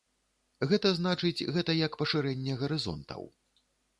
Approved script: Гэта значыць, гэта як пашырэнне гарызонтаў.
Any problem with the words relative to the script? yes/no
no